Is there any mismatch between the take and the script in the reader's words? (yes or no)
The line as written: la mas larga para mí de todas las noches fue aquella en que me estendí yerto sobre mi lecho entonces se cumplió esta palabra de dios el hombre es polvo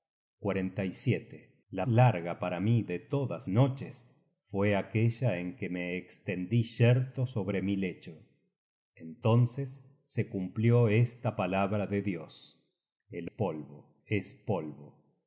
yes